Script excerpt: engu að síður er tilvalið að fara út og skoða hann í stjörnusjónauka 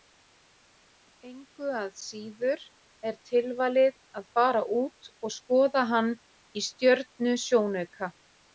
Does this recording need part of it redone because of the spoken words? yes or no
no